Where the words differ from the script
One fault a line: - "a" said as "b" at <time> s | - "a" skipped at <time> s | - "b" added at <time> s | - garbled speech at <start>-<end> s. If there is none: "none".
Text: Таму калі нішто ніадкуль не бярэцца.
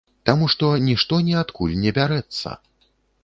- "калі" said as "што" at 0.5 s